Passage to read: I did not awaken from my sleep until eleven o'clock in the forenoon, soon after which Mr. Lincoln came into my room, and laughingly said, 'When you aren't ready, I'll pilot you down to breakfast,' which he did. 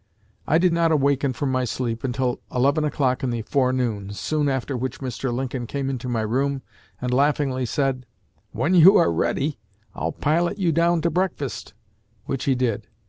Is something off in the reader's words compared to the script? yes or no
yes